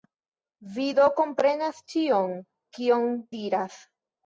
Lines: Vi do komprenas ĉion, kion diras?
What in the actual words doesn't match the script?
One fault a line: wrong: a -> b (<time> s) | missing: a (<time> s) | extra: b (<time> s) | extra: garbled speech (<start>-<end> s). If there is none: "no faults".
no faults